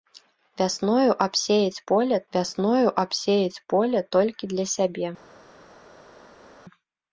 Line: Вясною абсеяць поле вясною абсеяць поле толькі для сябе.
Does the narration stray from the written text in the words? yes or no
no